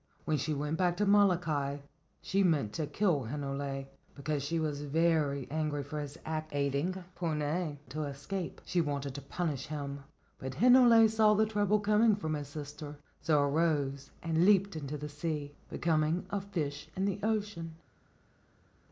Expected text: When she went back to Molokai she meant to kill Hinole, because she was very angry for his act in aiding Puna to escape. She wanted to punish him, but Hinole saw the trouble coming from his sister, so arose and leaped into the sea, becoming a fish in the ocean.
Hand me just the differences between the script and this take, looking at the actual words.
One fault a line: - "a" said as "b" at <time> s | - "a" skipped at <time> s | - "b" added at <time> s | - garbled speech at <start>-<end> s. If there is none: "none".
- "in" skipped at 6.5 s